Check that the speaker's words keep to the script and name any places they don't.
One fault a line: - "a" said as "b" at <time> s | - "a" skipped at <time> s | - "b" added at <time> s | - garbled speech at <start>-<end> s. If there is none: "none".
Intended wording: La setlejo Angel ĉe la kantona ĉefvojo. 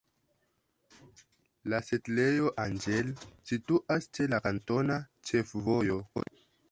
- "situas" added at 3.5 s